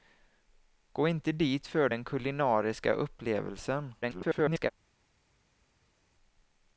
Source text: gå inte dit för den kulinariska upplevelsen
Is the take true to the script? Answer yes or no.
no